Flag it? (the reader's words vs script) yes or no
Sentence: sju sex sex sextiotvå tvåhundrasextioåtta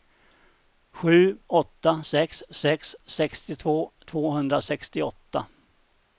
yes